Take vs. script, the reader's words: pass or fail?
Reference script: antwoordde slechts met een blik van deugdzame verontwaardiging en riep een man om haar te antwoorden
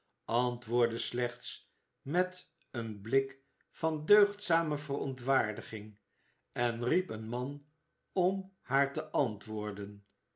pass